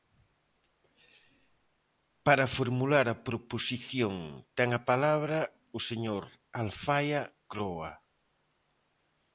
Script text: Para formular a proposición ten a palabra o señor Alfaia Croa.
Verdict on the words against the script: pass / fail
pass